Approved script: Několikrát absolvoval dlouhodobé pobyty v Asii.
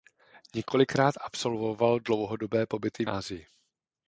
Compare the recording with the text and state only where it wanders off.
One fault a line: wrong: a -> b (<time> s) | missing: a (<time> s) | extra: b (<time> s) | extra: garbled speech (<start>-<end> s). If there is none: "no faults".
no faults